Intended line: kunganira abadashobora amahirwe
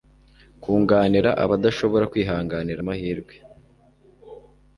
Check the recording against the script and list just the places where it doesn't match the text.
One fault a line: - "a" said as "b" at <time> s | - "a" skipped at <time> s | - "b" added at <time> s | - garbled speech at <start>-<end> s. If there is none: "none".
- "kwihanganira" added at 2.1 s